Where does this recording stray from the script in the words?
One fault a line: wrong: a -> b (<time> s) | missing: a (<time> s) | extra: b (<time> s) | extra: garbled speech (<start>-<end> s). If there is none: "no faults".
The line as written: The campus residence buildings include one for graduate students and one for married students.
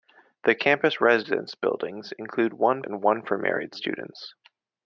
missing: for graduate students (2.8 s)